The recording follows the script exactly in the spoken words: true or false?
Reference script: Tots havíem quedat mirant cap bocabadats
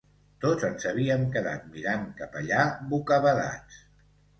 false